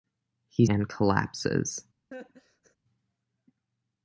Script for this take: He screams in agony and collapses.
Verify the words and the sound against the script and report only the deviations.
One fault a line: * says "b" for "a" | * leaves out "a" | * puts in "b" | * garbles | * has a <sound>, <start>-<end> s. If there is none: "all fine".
* leaves out "screams in agony"
* has a laugh, 2.1-2.8 s